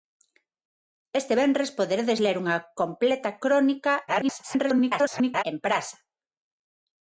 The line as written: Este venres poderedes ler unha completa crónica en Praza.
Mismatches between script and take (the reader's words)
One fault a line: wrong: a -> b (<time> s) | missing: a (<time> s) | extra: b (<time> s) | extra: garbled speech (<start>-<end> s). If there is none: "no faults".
extra: garbled speech (4.1-5.4 s)